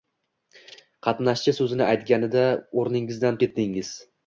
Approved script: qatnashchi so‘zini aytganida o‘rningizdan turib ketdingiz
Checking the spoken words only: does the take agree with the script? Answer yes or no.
no